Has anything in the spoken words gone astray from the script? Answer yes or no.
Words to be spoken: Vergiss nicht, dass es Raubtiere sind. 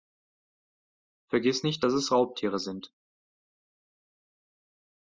no